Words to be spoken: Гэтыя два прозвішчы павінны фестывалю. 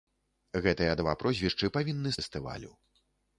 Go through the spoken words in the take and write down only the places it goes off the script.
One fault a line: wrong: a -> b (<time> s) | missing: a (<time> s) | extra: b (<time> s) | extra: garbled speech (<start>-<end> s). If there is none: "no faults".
no faults